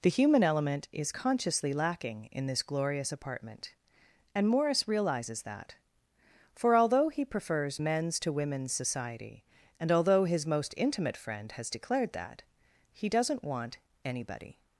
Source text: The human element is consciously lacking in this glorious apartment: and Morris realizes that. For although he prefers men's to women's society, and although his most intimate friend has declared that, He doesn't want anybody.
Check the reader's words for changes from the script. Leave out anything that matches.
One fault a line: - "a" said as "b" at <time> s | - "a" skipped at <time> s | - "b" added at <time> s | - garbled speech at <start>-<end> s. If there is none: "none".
none